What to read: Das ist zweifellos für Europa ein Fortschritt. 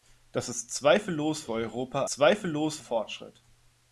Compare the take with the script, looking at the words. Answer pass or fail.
fail